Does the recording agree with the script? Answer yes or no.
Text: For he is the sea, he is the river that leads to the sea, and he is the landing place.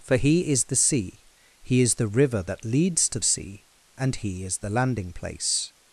no